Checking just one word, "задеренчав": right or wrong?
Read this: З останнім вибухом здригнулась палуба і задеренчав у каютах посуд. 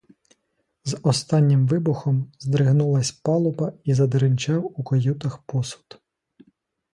right